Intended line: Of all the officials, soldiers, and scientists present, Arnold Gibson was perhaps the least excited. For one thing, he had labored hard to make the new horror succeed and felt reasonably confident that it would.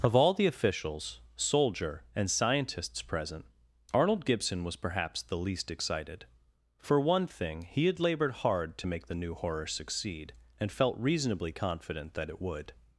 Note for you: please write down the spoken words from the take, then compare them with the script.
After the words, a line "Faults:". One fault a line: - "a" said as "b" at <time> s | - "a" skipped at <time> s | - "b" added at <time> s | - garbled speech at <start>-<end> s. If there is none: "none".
Of all the officials, soldier, and scientists present, Arnold Gibson was perhaps the least excited. For one thing, he had labored hard to make the new horror succeed and felt reasonably confident that it would.
Faults:
- "soldiers" said as "soldier" at 1.4 s